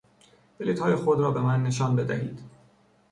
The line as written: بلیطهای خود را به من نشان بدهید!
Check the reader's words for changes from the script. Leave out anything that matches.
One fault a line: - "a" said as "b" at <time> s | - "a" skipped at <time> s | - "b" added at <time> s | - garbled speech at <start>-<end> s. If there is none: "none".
none